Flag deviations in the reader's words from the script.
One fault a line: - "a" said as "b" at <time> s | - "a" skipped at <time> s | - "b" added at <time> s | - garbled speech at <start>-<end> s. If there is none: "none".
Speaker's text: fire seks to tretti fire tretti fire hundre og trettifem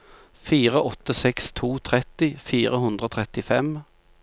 - "åtte" added at 0.9 s
- "tretti fire" skipped at 2.8 s